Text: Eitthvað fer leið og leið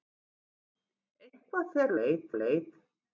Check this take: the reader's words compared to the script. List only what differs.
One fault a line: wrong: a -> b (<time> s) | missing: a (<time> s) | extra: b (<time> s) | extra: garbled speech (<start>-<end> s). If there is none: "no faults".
no faults